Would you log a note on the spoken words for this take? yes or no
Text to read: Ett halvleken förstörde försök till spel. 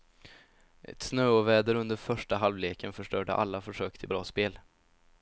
yes